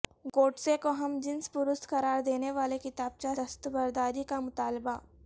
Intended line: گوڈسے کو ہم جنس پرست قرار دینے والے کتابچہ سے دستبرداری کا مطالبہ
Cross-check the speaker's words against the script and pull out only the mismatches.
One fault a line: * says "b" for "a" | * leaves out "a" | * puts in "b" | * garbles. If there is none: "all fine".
* leaves out "سے"